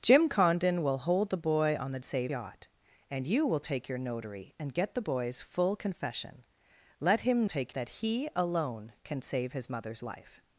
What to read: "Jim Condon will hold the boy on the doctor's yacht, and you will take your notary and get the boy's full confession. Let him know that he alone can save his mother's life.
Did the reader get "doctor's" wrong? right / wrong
wrong